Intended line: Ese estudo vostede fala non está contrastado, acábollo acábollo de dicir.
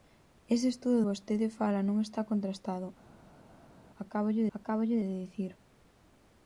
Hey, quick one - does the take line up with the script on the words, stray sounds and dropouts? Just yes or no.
yes